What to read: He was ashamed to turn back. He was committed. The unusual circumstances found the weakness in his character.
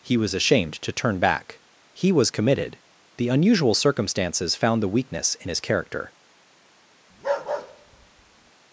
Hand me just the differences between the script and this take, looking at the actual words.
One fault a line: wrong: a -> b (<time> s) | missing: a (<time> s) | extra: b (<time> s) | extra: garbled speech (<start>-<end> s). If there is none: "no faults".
no faults